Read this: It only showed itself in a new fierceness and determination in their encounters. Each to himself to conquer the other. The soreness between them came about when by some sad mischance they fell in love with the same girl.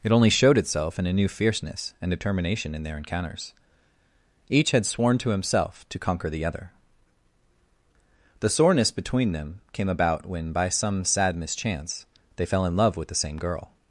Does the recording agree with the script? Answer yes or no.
no